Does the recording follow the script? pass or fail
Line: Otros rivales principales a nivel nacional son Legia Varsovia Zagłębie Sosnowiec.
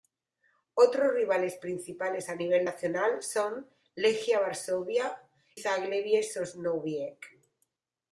pass